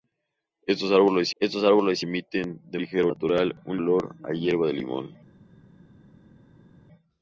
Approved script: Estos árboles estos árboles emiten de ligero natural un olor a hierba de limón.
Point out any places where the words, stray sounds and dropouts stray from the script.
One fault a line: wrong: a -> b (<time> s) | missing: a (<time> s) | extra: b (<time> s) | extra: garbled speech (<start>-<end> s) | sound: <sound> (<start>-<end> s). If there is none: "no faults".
no faults